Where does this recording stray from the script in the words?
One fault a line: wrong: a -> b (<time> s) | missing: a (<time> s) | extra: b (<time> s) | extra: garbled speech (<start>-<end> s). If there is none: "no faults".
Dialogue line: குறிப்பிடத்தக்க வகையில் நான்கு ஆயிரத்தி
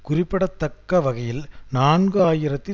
no faults